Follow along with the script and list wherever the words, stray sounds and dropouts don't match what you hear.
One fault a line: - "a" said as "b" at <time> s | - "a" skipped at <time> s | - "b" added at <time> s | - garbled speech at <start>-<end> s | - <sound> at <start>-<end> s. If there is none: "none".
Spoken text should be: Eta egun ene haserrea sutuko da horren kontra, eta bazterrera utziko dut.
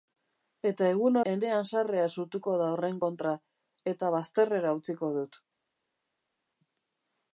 none